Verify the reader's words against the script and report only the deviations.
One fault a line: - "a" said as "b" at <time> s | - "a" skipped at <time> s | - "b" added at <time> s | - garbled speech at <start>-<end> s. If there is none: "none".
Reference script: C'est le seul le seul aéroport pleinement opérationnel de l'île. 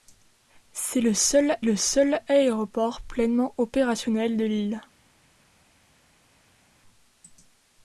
none